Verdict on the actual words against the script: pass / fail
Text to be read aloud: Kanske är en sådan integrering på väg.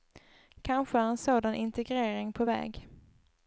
pass